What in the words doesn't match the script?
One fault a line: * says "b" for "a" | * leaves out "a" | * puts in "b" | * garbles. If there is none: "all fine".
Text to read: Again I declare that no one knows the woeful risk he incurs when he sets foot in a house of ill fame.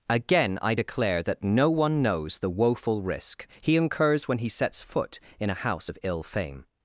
all fine